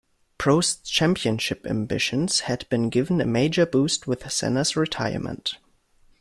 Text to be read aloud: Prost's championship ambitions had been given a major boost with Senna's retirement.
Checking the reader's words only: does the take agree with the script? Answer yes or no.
yes